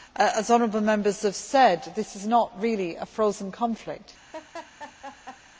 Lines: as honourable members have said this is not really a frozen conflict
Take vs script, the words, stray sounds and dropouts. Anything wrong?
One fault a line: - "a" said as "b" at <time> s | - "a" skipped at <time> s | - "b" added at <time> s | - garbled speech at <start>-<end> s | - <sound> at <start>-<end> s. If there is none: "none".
- laugh at 4.3-5.4 s